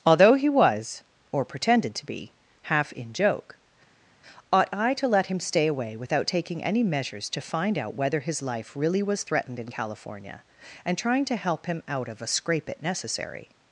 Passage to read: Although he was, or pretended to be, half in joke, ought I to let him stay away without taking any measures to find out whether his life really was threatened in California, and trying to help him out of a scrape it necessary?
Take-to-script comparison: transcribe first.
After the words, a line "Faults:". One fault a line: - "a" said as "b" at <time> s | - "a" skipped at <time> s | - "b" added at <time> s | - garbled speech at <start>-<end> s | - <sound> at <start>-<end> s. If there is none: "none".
Although he was, or pretended to be, half in joke, ought I to let him stay away without taking any measures to find out whether his life really was threatened in California, and trying to help him out of a scrape it necessary?
Faults:
none